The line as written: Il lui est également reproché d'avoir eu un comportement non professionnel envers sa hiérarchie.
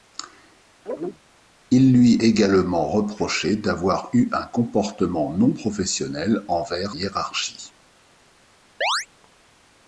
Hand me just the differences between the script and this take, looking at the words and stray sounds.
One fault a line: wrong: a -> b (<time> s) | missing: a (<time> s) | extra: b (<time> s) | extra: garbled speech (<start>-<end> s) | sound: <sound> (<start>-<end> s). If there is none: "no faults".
sound: chirp (0.9-1.2 s)
missing: est (2.1 s)
missing: sa (6.9 s)
sound: chirp (8.8-9.1 s)